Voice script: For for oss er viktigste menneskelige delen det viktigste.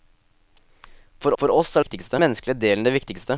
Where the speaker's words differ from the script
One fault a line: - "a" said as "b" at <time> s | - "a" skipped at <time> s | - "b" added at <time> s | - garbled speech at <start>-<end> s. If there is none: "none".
none